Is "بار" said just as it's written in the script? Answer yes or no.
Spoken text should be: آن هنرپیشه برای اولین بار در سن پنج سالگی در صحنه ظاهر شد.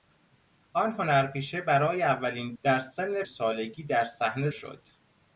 no